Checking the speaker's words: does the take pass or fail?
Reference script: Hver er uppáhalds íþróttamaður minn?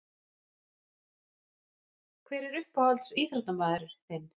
fail